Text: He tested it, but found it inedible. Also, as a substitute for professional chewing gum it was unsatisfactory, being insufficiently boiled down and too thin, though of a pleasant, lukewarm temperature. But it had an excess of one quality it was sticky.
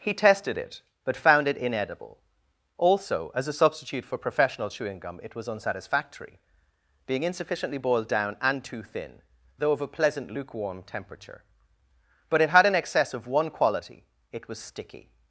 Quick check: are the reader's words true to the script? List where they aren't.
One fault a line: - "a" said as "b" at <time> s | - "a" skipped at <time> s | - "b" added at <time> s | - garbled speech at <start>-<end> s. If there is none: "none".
none